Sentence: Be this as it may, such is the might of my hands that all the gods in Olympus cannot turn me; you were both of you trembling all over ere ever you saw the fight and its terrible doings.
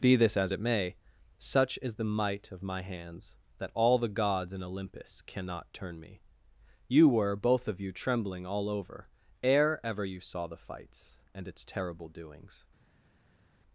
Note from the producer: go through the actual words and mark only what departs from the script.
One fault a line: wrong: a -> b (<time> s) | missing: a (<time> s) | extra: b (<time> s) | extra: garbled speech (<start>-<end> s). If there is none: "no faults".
wrong: fight -> fights (10.6 s)